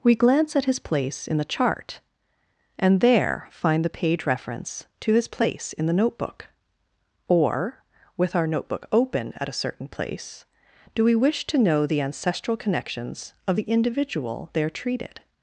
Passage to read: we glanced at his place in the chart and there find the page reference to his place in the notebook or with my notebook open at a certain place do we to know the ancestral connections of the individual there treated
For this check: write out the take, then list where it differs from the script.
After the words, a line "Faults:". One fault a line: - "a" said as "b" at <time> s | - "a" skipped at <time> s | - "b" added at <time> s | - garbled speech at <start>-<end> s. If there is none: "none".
we glance at his place in the chart and there find the page reference to his place in the notebook or with our notebook open at a certain place do we wish to know the ancestral connections of the individual there treated
Faults:
- "glanced" said as "glance" at 0.1 s
- "my" said as "our" at 8.3 s
- "wish" added at 11.2 s